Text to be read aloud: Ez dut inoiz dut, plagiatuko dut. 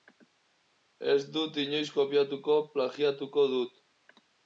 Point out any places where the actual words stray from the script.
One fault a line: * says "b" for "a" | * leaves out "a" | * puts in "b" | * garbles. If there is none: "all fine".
* says "kopiatuko" for "dut"